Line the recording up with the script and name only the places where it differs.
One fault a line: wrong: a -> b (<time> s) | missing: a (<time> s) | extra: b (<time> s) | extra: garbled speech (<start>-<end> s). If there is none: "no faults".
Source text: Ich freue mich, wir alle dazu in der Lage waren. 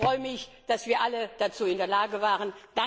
extra: dass (0.7 s)